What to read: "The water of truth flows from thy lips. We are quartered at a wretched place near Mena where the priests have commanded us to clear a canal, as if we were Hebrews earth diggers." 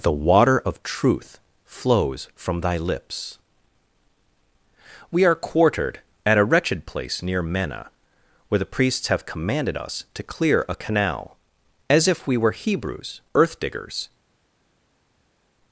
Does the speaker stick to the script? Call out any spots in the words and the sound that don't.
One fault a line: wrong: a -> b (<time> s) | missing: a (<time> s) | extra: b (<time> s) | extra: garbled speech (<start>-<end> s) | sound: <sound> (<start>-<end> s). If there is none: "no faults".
no faults